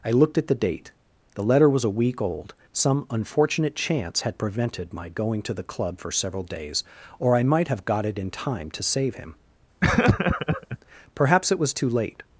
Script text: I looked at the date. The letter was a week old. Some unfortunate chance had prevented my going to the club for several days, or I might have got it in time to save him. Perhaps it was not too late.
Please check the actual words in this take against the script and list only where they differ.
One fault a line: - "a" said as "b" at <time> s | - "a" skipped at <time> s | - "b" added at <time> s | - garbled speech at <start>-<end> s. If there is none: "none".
- "not" skipped at 11.7 s